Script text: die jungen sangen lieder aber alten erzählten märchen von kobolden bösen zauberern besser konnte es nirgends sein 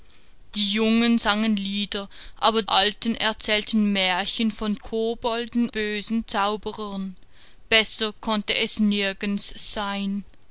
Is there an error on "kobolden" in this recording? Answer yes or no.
no